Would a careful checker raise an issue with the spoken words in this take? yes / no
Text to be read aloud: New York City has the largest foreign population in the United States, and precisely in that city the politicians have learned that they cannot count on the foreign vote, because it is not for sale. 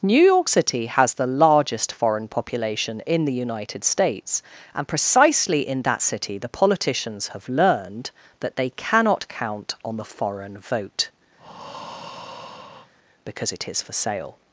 yes